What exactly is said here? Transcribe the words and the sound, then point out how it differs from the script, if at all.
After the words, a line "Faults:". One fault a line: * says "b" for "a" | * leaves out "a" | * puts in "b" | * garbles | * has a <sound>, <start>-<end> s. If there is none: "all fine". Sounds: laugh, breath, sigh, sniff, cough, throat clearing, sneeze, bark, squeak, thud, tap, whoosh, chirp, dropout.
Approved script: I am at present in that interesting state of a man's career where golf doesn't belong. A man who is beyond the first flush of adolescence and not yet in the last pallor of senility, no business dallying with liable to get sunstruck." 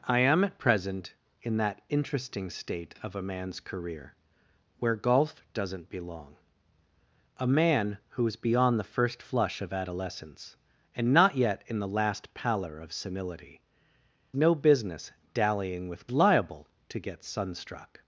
I am at present in that interesting state of a man's career where golf doesn't belong. A man who is beyond the first flush of adolescence and not yet in the last pallor of senility, no business dallying with liable to get sunstruck."
Faults:
all fine